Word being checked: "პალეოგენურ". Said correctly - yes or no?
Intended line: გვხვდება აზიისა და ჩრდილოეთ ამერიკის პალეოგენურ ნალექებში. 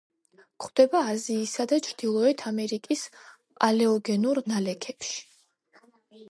yes